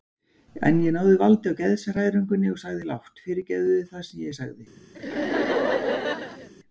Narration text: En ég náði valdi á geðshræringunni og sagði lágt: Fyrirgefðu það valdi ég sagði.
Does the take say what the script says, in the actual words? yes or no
no